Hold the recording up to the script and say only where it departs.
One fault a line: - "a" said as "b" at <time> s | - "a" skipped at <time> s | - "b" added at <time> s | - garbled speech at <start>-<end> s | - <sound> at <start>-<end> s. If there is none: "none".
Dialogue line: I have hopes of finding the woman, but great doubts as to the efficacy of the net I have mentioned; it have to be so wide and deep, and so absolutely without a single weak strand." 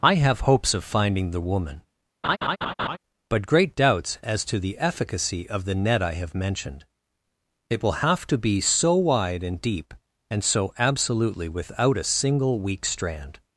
- laugh at 2.2-3.0 s
- "will" added at 7.8 s